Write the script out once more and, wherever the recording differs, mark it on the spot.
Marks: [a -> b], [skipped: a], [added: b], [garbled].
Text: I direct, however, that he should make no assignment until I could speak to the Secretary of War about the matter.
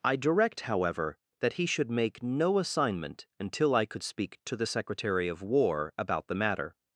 I direct, however, that he should make no assignment until I could speak to the Secretary of War about the matter.